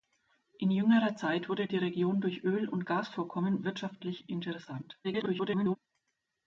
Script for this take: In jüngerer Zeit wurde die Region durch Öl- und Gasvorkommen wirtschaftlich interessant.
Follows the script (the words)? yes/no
no